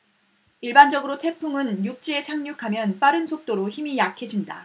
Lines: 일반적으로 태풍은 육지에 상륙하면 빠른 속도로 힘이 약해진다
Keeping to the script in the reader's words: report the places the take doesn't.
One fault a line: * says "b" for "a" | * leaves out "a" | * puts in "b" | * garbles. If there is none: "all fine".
all fine